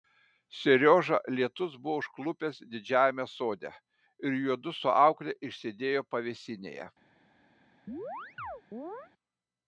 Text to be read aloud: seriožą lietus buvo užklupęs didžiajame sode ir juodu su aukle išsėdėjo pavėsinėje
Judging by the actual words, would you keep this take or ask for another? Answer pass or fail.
pass